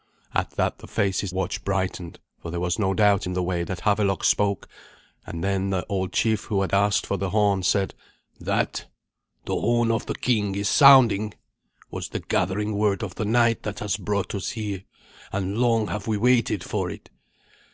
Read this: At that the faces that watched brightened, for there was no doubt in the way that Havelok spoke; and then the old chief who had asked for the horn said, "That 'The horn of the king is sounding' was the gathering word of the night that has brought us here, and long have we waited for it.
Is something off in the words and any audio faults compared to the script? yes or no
yes